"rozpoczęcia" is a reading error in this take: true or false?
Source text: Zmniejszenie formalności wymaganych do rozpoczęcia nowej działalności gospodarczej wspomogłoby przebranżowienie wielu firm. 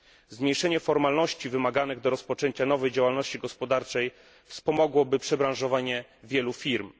false